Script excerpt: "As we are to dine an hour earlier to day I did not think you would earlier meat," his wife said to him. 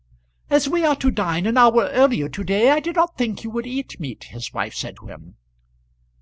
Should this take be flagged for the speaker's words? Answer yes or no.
yes